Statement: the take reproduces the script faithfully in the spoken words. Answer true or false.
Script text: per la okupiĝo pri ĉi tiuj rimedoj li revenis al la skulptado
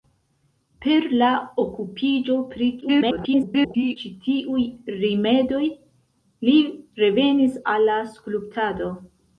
false